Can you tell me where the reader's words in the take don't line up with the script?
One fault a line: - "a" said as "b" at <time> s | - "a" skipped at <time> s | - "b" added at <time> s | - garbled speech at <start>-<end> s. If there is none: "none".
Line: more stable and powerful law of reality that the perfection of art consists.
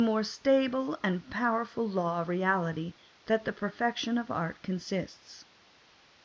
none